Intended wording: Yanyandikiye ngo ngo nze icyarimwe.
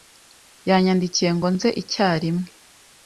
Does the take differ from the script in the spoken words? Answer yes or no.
yes